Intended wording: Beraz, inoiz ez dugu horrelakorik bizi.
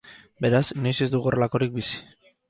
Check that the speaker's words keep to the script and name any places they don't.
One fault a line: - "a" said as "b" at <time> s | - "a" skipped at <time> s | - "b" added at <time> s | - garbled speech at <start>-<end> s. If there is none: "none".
none